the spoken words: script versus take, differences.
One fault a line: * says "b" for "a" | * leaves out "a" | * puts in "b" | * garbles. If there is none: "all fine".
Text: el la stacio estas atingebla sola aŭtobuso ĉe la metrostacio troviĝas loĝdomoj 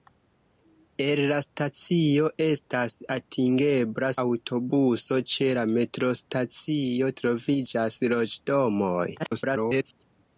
* leaves out "sola"
* garbles